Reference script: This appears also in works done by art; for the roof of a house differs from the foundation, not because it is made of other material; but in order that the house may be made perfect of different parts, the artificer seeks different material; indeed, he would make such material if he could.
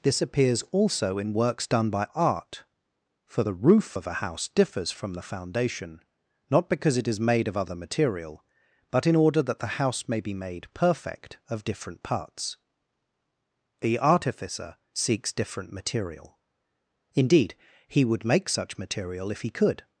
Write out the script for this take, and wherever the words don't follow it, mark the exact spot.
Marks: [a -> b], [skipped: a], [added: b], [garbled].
This appears also in works done by art; for the roof of a house differs from the foundation, not because it is made of other material; but in order that the house may be made perfect of different parts, the artificer seeks different material; indeed, he would make such material if he could.